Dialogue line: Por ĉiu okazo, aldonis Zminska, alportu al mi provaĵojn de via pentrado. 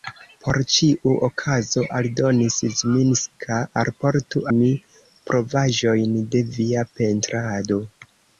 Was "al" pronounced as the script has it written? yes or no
no